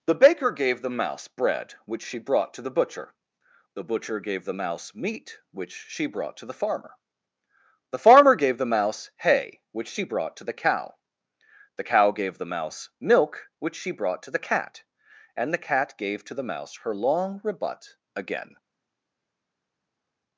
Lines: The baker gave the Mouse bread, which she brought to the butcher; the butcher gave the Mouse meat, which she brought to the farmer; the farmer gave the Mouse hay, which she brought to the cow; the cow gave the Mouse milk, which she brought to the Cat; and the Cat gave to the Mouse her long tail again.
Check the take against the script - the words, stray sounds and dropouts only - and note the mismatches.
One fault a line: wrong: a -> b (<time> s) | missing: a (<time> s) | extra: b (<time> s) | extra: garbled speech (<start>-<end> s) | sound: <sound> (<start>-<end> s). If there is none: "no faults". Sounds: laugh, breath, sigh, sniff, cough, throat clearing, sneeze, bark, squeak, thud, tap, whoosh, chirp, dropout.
wrong: tail -> rebut (17.4 s)